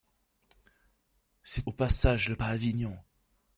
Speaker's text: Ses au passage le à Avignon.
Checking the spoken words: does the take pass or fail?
pass